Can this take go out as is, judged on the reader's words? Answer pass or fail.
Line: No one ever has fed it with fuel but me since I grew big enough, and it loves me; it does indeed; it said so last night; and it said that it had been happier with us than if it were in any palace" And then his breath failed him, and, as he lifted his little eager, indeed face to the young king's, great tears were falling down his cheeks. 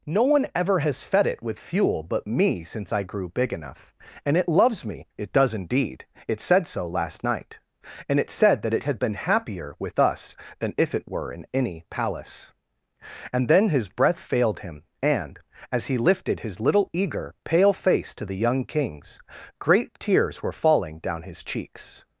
fail